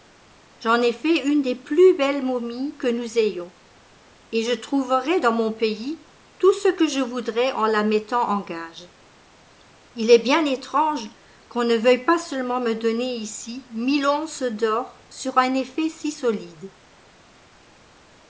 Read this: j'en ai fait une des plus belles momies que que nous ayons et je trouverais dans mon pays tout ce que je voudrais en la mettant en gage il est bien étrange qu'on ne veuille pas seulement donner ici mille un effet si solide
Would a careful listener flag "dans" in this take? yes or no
no